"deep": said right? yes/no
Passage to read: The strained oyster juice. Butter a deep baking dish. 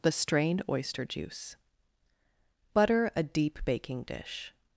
yes